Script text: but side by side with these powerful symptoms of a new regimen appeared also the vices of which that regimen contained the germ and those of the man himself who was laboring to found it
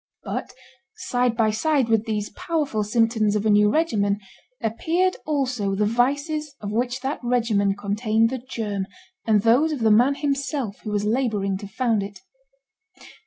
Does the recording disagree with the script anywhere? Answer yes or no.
no